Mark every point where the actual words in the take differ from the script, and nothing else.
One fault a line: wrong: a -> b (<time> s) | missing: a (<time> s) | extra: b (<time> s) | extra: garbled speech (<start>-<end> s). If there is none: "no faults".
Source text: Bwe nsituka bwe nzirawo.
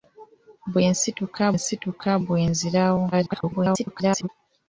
extra: nsituka (1.6 s)
extra: garbled speech (3.1-4.3 s)